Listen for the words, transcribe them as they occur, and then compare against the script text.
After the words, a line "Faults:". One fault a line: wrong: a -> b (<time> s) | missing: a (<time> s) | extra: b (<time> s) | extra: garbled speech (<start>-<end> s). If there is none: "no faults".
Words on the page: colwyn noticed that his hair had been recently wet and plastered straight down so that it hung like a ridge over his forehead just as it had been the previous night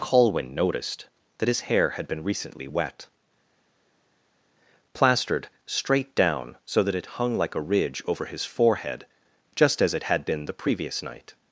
colwyn noticed that his hair had been recently wet plastered straight down so that it hung like a ridge over his forehead just as it had been the previous night
Faults:
missing: and (3.0 s)